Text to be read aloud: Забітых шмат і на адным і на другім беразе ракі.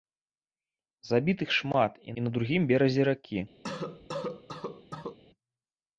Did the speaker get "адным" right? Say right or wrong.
wrong